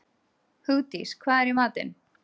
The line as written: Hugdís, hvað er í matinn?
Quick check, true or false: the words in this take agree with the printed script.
true